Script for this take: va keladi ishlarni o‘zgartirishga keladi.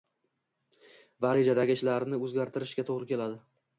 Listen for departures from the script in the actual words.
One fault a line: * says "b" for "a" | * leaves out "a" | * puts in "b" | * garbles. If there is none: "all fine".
* says "rejadagi" for "keladi"
* puts in "to‘g‘ri"